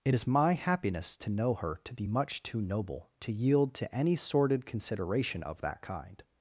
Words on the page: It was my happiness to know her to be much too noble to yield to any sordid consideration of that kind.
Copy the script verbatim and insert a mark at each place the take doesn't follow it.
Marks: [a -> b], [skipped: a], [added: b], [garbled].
It [was -> is] my happiness to know her to be much too noble to yield to any sordid consideration of that kind.